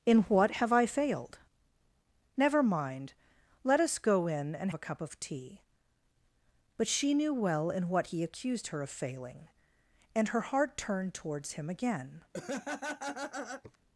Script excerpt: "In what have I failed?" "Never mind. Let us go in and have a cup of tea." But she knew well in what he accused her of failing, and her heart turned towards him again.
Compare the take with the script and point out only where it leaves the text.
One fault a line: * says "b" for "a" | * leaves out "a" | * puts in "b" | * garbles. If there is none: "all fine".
* leaves out "have"